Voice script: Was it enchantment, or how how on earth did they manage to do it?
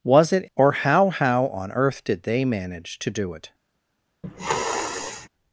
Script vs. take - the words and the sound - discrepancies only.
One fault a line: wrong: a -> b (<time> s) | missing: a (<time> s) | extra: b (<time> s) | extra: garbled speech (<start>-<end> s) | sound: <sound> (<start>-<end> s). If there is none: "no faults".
missing: enchantment (0.5 s)
sound: sniff (4.2-5.3 s)